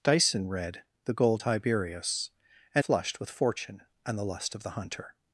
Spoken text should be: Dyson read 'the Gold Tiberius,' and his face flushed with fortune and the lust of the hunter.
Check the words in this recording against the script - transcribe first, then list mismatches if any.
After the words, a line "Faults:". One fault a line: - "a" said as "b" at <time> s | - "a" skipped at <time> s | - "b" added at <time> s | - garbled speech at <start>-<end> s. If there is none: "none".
Dyson read 'the Gold Tiberius,' and flushed with fortune and the lust of the hunter.
Faults:
- "his face" skipped at 2.8 s